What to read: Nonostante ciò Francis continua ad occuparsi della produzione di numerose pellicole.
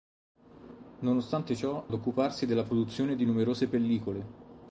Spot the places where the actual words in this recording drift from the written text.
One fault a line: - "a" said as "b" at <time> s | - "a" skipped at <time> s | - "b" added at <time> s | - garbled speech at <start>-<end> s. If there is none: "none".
- "Francis continua" skipped at 1.9 s